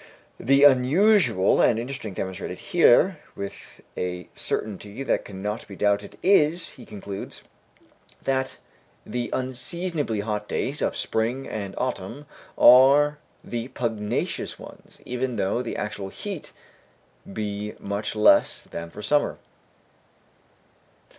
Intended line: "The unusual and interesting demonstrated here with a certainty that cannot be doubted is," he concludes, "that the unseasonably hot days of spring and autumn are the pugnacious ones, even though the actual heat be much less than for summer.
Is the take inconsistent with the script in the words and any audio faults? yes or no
no